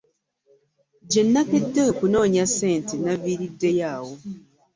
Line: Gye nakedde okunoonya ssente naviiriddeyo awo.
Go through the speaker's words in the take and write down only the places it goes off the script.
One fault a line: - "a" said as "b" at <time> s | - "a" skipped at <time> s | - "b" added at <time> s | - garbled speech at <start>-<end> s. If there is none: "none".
none